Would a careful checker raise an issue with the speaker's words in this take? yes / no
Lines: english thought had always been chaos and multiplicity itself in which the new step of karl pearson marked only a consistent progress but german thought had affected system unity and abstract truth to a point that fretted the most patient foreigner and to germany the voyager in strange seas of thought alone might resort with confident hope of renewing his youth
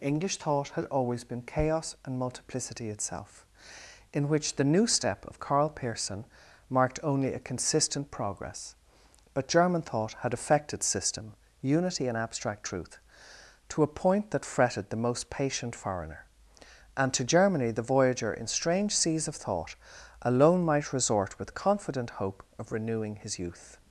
no